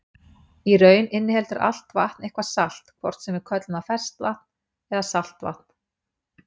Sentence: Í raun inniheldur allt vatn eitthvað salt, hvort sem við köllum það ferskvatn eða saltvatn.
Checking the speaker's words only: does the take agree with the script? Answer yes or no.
yes